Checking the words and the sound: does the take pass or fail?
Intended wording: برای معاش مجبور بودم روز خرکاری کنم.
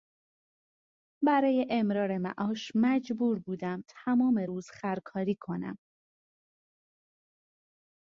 fail